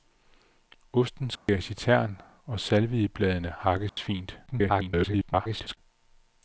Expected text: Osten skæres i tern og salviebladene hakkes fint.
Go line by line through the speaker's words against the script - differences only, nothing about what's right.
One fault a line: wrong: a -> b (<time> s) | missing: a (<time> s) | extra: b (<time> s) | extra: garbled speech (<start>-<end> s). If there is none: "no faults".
extra: garbled speech (4.5-5.8 s)